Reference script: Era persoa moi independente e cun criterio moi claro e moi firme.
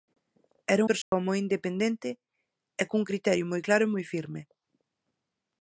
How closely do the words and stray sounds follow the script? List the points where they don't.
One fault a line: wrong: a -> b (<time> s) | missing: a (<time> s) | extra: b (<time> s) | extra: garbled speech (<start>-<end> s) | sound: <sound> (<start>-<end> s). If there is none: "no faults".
sound: dropout (1.0-1.1 s)